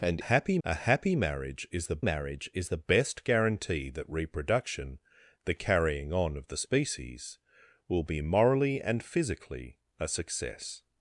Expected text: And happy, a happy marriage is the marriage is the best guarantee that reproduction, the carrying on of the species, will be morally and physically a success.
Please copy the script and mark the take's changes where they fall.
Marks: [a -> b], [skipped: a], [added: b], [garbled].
And happy, a happy marriage is the marriage is the best guarantee that reproduction, the carrying on of the species, will be morally and physically a success.